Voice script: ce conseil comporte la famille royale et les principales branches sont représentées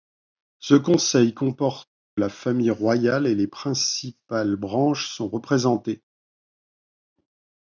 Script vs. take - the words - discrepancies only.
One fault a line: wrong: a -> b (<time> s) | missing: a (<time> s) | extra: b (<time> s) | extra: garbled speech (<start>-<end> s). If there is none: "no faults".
no faults